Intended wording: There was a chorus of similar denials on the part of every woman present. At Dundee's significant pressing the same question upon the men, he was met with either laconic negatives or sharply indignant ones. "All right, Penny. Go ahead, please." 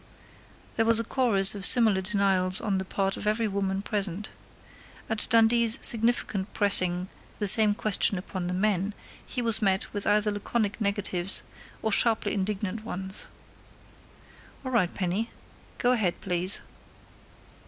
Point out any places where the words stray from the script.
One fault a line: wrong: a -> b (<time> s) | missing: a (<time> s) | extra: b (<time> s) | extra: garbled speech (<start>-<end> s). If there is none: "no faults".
no faults